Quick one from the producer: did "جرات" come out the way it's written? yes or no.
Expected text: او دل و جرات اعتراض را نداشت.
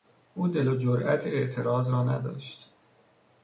yes